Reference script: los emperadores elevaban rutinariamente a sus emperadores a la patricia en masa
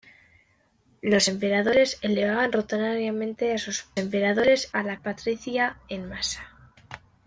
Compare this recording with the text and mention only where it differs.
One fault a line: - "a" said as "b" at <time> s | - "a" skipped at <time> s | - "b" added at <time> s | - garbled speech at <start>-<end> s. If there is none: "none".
none